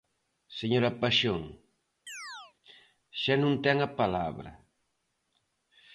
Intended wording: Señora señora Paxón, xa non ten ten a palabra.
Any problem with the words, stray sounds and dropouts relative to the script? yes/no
yes